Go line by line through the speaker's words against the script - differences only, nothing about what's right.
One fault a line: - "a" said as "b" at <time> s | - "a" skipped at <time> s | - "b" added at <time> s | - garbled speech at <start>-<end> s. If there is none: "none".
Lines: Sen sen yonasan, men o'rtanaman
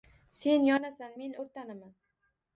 - "sen" skipped at 0.7 s